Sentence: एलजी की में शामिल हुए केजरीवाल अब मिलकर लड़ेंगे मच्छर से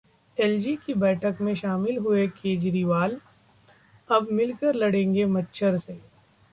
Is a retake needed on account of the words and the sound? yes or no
yes